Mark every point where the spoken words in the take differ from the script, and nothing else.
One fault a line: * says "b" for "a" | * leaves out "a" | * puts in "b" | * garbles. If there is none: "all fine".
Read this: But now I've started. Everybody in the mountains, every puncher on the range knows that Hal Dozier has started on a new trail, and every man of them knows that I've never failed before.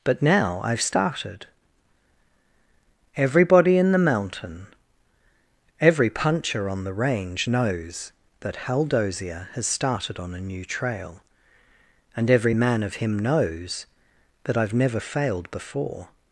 * says "mountain" for "mountains"
* says "him" for "them"